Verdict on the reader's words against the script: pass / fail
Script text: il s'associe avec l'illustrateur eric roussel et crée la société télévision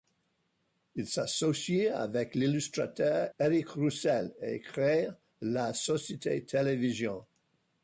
pass